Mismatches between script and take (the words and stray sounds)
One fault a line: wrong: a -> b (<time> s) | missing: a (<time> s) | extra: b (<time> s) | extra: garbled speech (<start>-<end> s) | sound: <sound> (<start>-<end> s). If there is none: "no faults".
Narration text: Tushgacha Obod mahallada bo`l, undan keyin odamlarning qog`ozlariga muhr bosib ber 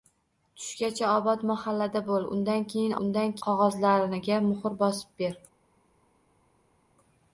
wrong: odamlarning -> undan (3.1 s)